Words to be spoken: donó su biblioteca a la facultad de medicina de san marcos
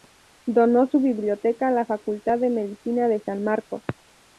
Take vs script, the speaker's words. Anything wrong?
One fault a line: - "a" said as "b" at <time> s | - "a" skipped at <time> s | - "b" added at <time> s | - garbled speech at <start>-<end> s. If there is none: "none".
none